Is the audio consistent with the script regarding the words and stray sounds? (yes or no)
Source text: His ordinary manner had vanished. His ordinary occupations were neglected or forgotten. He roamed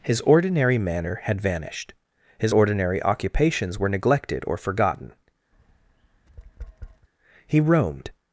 no